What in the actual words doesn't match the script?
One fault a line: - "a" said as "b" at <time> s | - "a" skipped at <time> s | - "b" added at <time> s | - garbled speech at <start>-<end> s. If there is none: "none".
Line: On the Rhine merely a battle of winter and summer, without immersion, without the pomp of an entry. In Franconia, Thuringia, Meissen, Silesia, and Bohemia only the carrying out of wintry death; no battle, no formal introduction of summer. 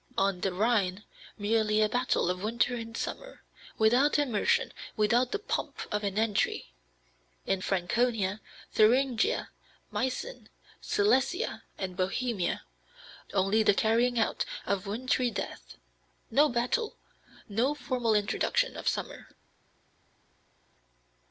none